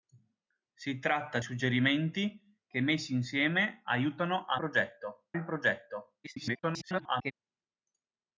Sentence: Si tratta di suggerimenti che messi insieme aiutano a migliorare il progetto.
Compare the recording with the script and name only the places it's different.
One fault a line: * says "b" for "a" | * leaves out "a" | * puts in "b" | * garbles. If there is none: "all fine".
* leaves out "di"
* says "progetto" for "migliorare"
* garbles